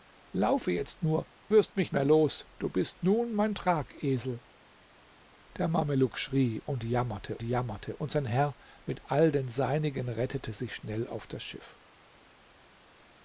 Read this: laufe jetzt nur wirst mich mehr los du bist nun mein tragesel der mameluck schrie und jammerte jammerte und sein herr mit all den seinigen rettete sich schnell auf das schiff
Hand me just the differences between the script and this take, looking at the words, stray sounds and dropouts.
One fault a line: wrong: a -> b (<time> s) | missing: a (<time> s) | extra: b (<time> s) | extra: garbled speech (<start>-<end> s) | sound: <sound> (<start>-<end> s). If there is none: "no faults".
no faults